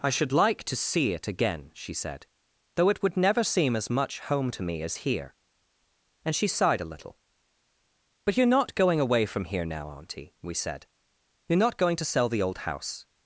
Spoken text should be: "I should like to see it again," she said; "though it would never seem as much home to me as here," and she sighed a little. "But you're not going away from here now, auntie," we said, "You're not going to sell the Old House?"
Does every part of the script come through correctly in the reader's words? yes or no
yes